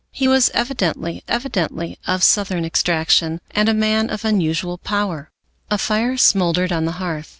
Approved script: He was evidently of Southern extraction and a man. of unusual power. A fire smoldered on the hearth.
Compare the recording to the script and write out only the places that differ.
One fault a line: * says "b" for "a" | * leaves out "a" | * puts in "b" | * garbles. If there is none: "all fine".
* puts in "evidently"